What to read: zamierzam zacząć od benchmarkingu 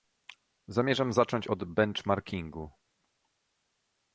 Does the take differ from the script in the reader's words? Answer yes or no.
no